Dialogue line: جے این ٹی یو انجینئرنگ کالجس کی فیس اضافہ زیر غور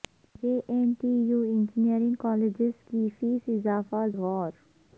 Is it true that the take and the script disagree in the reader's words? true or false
true